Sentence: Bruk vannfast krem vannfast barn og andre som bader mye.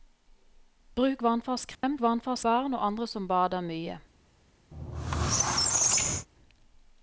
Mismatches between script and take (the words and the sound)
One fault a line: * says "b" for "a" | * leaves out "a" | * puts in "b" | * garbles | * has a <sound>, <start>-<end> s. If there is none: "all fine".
* has a dropout, 1.7-1.8 s
* has a squeak, 4.7-6.3 s